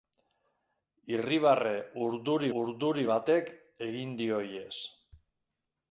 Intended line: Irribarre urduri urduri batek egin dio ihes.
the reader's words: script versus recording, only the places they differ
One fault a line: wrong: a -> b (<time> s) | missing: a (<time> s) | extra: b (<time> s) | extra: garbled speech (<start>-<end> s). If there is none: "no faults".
no faults